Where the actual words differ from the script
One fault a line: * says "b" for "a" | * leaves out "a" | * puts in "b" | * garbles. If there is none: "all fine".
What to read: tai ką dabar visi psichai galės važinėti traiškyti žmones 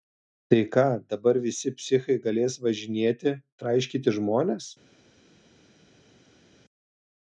all fine